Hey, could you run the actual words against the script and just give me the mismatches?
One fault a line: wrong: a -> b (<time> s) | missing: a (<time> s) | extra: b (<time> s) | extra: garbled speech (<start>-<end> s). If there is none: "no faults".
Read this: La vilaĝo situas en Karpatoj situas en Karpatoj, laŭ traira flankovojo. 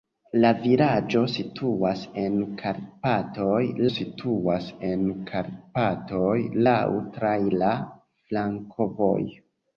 no faults